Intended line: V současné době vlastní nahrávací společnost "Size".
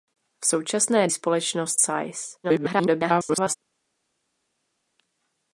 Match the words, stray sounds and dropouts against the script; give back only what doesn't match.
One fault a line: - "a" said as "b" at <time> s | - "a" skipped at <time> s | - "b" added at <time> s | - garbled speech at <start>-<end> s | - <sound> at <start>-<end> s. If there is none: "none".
- "době vlastní nahrávací" skipped at 1.1 s
- garbled speech at 2.4-3.6 s